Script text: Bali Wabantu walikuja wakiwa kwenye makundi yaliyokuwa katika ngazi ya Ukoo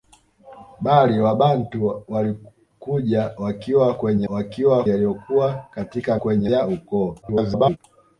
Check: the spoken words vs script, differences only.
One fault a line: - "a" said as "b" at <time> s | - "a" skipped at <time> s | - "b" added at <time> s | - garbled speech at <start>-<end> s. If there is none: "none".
- "makundi" said as "wakiwa" at 4.3 s
- "ngazi" said as "kwenye" at 6.2 s
- garbled speech at 7.2-7.8 s